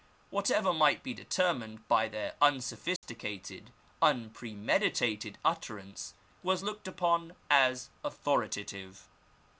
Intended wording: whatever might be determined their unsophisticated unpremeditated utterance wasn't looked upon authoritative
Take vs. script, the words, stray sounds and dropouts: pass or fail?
fail